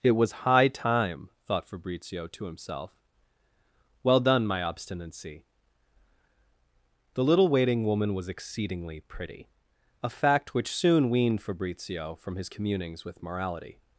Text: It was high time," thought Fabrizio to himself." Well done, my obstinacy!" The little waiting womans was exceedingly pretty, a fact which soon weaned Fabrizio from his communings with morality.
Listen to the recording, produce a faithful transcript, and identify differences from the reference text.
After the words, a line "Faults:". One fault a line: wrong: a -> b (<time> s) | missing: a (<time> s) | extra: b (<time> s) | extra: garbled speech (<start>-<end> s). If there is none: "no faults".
It was high time," thought Fabrizio to himself." Well done, my obstinacy!" The little waiting woman was exceedingly pretty, a fact which soon weaned Fabrizio from his communings with morality.
Faults:
wrong: womans -> woman (7.8 s)